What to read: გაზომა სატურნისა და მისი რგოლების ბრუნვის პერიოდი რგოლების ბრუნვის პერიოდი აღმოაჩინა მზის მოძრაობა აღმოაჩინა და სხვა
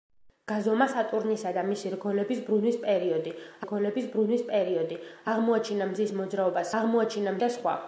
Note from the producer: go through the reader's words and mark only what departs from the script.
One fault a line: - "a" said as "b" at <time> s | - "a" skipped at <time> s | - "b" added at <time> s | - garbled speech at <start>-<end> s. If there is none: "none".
none